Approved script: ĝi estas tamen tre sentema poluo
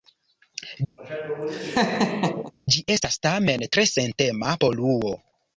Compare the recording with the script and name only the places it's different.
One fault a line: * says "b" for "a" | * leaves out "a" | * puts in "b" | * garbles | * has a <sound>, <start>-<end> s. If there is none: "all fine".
* has a laugh, 1.0-2.5 s